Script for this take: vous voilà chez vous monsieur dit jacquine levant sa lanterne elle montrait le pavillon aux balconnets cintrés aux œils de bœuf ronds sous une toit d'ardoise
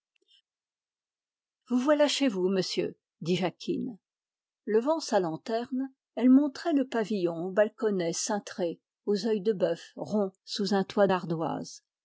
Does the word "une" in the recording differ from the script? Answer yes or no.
yes